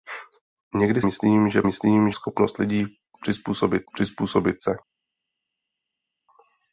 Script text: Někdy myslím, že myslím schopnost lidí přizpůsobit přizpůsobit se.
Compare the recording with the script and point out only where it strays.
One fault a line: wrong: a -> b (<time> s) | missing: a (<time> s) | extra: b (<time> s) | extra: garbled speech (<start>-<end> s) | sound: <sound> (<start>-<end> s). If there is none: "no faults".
no faults